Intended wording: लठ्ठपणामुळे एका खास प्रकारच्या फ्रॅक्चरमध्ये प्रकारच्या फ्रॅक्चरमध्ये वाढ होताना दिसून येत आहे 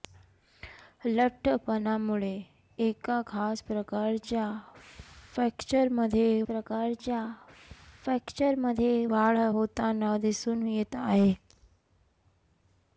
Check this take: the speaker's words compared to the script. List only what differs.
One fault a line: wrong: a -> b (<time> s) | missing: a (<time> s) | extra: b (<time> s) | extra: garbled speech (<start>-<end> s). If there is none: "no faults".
no faults